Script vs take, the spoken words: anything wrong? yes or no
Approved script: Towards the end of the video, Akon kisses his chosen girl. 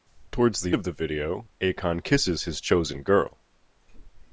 yes